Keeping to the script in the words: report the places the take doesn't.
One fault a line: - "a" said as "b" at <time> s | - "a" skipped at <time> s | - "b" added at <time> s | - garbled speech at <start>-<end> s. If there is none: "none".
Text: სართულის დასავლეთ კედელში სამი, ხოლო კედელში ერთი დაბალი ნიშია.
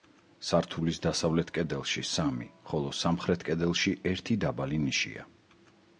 - "სამხრეთ" added at 3.0 s